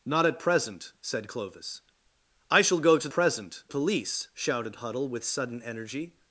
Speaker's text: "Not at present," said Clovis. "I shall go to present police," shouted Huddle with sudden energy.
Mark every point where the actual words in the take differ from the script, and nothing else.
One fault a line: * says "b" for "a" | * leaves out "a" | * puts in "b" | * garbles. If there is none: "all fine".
all fine